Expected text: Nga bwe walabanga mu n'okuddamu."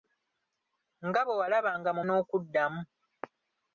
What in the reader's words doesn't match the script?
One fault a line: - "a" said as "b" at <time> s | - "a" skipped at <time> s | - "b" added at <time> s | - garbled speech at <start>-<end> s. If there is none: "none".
none